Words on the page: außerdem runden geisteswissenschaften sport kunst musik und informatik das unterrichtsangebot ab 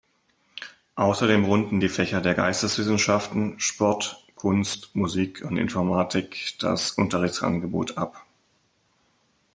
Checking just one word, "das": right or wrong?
right